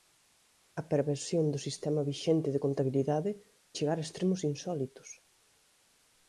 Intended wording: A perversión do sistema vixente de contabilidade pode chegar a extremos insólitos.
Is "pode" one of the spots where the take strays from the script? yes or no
yes